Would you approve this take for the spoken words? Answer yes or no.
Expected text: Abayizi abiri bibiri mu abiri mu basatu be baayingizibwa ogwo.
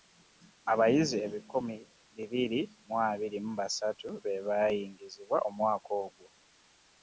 no